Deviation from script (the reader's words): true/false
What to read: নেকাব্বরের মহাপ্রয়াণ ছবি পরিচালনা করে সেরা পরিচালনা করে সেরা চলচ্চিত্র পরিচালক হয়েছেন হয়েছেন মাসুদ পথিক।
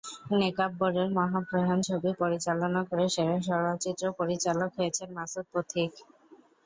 true